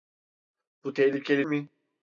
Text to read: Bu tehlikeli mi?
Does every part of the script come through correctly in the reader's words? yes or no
yes